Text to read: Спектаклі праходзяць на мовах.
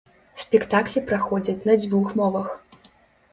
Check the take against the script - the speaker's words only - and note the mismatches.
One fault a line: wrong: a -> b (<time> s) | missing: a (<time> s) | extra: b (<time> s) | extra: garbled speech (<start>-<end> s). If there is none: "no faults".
extra: дзвюх (1.8 s)